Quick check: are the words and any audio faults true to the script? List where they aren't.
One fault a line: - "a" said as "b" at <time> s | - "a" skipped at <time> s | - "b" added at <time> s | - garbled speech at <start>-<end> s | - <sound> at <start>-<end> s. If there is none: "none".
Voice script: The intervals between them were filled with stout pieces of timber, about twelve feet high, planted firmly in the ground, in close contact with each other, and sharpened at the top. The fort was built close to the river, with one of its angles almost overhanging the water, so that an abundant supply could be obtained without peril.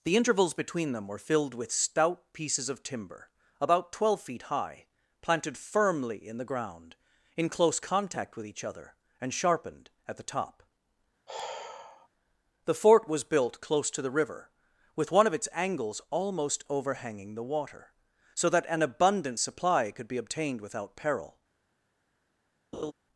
- sigh at 11.3-12.1 s
- laugh at 22.7-22.9 s